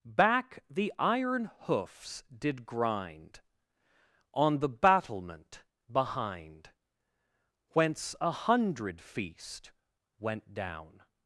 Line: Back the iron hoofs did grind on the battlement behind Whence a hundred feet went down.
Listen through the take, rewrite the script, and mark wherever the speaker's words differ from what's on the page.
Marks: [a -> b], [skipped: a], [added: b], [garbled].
Back the iron hoofs did grind on the battlement behind Whence a hundred [feet -> feast] went down.